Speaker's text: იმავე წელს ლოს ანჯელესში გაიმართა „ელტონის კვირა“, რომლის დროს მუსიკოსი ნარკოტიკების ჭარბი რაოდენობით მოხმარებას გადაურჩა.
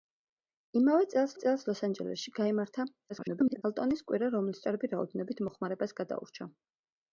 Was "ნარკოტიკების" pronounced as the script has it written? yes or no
no